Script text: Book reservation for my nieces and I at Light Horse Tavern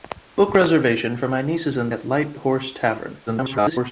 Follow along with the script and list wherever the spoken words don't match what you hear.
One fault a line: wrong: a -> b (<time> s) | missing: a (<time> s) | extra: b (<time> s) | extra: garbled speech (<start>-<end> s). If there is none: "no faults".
missing: I (1.9 s)
extra: garbled speech (3.3-3.9 s)